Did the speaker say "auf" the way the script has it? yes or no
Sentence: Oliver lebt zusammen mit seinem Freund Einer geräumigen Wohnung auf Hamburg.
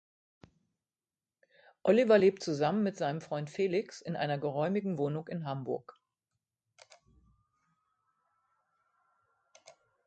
no